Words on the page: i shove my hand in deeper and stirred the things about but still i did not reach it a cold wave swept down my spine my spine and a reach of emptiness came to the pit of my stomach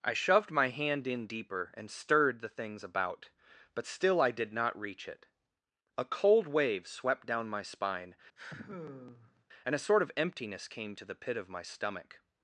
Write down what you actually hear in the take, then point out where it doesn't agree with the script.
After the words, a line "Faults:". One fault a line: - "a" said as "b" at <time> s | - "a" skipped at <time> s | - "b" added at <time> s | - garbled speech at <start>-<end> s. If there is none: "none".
i shoved my hand in deeper and stirred the things about but still i did not reach it a cold wave swept down my spine and a sort of emptiness came to the pit of my stomach
Faults:
- "shove" said as "shoved" at 0.1 s
- "my spine" skipped at 8.2 s
- "reach" said as "sort" at 9.9 s